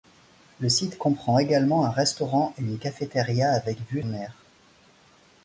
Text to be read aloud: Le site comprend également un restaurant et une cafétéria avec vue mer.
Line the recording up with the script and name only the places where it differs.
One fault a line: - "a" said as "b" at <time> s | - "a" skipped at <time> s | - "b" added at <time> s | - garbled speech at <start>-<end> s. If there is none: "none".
none